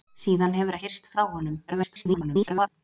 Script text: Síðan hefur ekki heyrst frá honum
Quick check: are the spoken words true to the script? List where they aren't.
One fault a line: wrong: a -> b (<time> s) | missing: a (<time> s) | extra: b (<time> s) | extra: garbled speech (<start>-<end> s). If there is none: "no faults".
missing: ekki (0.8 s)
extra: garbled speech (1.7-2.7 s)